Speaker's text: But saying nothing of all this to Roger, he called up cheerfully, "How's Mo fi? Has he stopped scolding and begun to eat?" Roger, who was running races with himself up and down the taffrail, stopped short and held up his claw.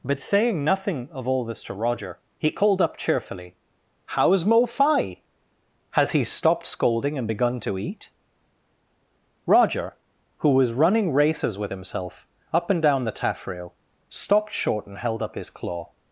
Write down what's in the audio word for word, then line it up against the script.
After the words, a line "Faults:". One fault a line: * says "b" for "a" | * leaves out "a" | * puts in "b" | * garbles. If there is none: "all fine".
But saying nothing of all this to Roger, he called up cheerfully, "How's Mo fi? Has he stopped scolding and begun to eat?" Roger, who was running races with himself up and down the taffrail, stopped short and held up his claw.
Faults:
all fine